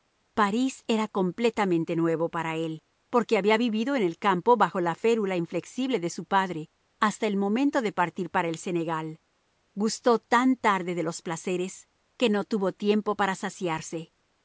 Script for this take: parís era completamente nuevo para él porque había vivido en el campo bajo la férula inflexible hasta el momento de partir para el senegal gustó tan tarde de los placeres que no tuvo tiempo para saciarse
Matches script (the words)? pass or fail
fail